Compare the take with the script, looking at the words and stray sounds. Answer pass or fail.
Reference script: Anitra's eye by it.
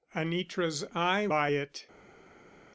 pass